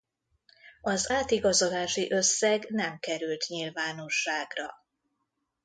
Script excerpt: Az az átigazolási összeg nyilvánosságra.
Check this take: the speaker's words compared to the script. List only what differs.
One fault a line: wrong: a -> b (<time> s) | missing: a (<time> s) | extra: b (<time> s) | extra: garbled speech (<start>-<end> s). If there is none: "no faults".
missing: az (1.1 s)
extra: nem került (2.7 s)